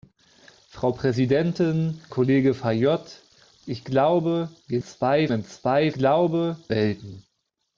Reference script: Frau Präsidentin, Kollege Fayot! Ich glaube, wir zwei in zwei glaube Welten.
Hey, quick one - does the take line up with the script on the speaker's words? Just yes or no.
yes